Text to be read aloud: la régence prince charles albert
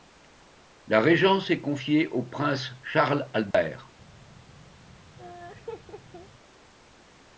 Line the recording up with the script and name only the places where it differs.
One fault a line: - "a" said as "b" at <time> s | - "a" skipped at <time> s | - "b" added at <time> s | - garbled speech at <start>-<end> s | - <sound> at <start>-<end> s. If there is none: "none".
- "est confiée au" added at 1.5 s
- dropout at 3.5-3.5 s
- laugh at 5.2-6.3 s